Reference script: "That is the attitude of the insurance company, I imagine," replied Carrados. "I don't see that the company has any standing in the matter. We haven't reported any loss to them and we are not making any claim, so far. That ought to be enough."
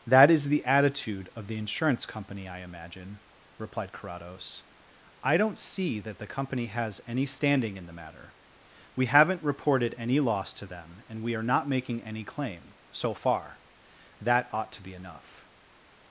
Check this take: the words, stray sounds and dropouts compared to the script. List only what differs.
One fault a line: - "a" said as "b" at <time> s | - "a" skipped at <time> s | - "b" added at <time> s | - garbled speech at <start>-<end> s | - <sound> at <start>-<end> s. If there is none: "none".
none